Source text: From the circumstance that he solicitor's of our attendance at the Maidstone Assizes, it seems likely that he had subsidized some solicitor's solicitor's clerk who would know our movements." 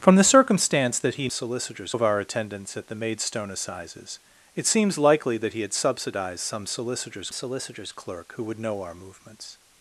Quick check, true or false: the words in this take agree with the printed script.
true